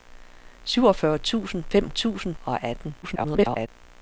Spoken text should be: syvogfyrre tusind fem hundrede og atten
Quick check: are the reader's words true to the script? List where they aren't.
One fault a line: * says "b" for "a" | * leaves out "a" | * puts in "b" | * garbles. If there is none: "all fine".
* says "tusind" for "hundrede"
* garbles